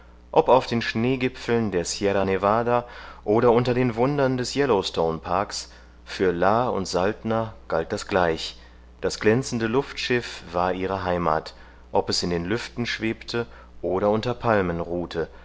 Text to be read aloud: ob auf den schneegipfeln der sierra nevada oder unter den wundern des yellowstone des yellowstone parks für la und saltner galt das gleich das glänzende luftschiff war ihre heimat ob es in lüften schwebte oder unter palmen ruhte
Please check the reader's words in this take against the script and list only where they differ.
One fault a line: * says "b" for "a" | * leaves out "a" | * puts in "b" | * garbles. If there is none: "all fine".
* leaves out "des yellowstone"
* puts in "den"